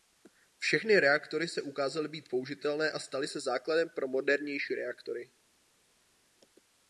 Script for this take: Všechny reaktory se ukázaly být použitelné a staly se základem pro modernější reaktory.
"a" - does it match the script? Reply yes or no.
yes